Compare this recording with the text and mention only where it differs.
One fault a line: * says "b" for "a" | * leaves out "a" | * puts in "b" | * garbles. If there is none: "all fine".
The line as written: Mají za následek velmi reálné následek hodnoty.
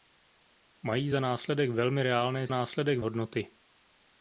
all fine